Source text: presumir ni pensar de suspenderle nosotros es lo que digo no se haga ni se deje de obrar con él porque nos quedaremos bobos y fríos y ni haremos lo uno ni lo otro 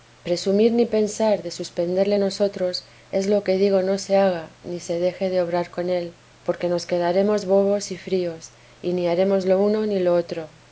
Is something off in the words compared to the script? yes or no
no